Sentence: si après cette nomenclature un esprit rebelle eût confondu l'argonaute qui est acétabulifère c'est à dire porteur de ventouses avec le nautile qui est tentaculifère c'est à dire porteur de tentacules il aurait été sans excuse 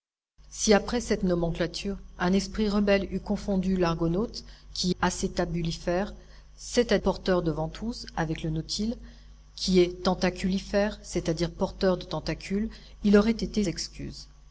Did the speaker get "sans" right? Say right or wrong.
wrong